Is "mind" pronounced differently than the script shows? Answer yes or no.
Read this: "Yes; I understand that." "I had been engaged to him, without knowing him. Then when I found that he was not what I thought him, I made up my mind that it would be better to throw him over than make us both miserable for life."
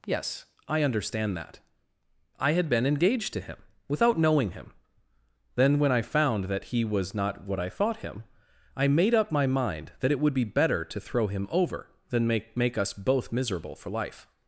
no